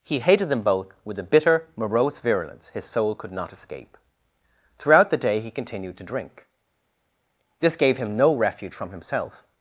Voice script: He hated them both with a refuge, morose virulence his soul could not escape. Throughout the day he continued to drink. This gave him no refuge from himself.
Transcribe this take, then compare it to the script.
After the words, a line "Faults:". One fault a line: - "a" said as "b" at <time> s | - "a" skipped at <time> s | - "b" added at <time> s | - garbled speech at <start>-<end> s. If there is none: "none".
He hated them both with a bitter, morose virulence his soul could not escape. Throughout the day he continued to drink. This gave him no refuge from himself.
Faults:
- "refuge" said as "bitter" at 1.2 s